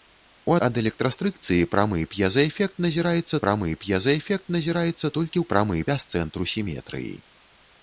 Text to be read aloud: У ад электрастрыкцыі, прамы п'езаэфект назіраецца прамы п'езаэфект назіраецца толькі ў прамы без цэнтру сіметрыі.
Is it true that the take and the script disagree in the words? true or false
false